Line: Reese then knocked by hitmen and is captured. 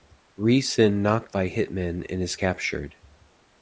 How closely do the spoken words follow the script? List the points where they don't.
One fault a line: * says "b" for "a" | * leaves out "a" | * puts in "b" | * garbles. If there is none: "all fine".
all fine